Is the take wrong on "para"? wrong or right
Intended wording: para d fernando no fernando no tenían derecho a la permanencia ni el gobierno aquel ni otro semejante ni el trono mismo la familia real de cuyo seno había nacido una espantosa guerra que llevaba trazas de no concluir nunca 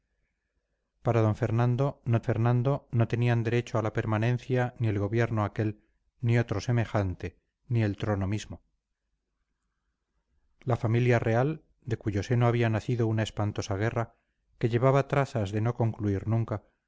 right